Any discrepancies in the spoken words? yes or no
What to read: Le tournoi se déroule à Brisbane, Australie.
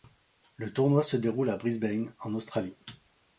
yes